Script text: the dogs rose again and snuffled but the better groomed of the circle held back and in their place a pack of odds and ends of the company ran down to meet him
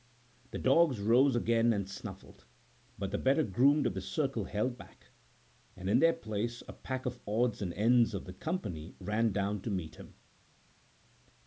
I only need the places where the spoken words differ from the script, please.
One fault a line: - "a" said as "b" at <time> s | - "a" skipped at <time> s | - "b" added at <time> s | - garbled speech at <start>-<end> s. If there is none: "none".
none